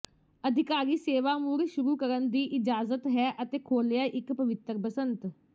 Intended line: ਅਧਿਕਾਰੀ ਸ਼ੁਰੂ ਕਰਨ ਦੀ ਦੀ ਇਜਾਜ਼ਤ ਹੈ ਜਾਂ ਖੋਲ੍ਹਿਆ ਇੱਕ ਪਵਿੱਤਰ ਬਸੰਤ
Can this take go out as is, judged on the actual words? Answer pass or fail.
fail